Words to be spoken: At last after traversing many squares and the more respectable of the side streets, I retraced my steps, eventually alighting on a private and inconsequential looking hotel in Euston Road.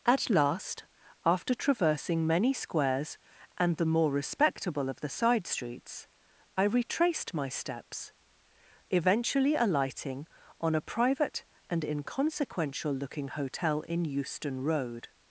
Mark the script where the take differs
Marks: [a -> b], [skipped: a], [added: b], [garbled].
At last after traversing many squares and the more respectable of the side streets, I retraced my steps, eventually alighting on a private and inconsequential looking hotel in Euston Road.